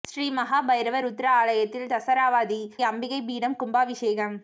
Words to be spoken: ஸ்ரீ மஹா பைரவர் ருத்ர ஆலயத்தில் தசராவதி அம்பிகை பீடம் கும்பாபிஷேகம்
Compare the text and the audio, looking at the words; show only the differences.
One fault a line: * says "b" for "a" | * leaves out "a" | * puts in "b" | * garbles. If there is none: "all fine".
all fine